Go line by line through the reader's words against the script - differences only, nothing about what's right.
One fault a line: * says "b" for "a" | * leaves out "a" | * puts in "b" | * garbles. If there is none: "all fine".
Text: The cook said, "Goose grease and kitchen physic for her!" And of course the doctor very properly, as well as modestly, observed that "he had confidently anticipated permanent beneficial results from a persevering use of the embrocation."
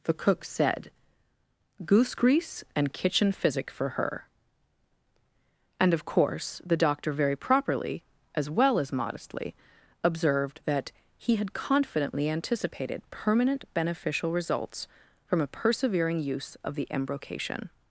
all fine